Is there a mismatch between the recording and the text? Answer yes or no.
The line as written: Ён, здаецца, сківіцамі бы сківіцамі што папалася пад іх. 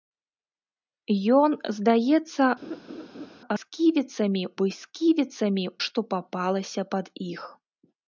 no